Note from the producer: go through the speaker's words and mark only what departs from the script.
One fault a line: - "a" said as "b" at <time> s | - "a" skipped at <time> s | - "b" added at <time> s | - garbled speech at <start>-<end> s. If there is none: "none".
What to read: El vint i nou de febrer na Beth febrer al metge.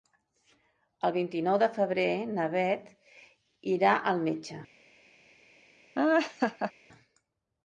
- "febrer" said as "irà" at 3.8 s